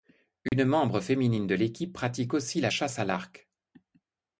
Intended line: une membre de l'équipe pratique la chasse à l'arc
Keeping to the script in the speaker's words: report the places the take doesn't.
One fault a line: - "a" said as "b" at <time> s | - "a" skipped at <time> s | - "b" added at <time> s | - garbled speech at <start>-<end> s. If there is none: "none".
- "féminine" added at 1.0 s
- "aussi" added at 2.3 s